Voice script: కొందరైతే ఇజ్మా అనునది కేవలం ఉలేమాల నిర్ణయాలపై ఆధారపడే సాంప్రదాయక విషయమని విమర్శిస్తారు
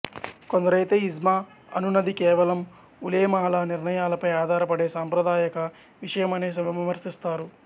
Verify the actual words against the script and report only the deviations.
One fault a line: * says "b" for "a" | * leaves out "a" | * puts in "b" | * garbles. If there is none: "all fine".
all fine